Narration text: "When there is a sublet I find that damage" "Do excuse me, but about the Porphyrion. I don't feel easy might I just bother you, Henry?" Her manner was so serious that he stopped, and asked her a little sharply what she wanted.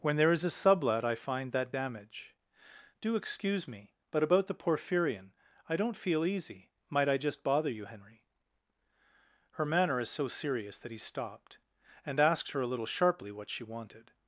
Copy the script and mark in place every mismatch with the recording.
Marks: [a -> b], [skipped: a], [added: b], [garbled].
"When there is a sublet I find that damage" "Do excuse me, but about the Porphyrion. I don't feel easy might I just bother you, Henry?" Her manner [was -> is] so serious that he stopped, and asked her a little sharply what she wanted.